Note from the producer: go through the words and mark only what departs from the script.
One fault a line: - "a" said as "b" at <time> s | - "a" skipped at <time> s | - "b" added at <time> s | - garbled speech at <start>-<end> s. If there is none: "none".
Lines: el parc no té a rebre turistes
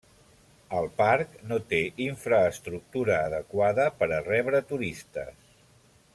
- "infraestructura adequada per" added at 2.0 s